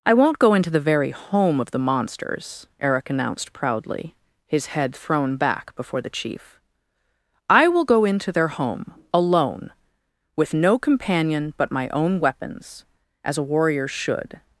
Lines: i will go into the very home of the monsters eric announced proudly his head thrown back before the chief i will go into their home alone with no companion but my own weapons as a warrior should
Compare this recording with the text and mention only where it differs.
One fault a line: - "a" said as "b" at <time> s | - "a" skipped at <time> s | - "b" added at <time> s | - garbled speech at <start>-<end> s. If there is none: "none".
- "will" said as "won't" at 0.1 s